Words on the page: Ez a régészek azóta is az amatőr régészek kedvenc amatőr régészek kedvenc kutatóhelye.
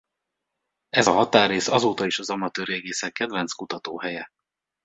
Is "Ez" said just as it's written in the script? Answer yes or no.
yes